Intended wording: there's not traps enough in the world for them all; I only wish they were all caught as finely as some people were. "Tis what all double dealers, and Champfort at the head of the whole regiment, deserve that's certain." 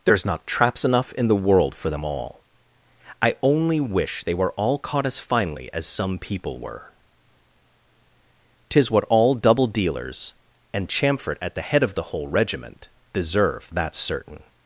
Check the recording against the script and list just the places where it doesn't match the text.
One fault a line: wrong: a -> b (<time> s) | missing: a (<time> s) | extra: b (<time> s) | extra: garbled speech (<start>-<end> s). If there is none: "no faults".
no faults